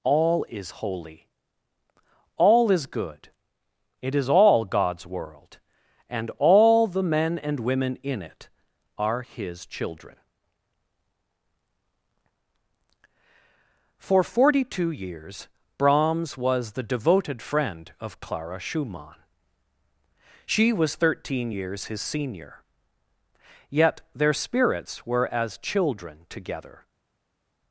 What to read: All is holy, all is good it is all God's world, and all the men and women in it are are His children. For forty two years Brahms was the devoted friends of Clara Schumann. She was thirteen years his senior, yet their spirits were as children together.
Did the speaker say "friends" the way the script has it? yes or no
no